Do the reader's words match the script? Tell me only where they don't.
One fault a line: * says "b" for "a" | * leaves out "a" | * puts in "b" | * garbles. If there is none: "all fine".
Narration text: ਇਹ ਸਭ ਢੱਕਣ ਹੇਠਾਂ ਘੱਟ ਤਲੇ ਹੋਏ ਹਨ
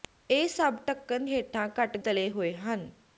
all fine